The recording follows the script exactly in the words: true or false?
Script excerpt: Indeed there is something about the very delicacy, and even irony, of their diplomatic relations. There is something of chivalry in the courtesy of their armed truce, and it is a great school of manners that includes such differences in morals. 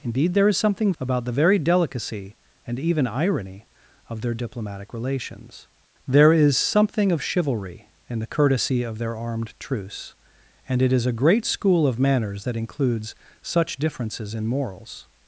true